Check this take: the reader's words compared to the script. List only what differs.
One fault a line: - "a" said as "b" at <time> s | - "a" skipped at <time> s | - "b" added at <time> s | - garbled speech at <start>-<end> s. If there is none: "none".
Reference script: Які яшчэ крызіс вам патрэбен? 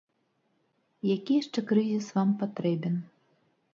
none